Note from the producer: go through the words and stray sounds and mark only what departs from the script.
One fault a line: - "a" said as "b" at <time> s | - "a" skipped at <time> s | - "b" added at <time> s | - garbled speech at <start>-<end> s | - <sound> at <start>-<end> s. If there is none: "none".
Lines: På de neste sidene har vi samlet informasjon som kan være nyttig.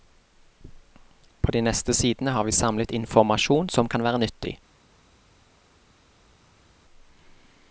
none